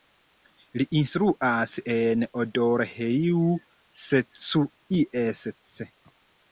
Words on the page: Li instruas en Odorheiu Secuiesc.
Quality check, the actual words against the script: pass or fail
pass